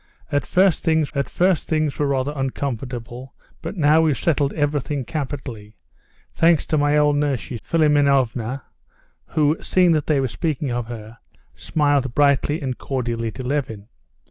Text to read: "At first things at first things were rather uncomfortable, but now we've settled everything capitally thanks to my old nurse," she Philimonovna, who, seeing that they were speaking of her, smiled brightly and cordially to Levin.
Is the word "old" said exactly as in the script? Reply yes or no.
yes